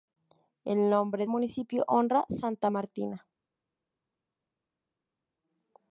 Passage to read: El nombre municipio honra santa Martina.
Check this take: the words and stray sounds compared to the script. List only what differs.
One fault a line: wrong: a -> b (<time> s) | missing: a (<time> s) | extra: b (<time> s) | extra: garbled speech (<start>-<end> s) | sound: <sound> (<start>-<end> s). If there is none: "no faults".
no faults